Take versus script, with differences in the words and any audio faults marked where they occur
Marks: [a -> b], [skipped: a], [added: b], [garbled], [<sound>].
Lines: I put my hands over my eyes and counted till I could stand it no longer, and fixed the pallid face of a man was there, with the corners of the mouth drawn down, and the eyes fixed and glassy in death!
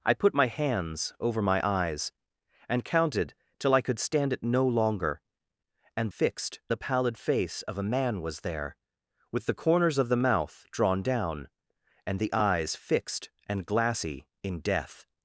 I put my hands over my eyes and counted till I could stand it no longer, and fixed the pallid face of a man was there, with the corners of the mouth drawn down, and the eyes fixed and glassy in death!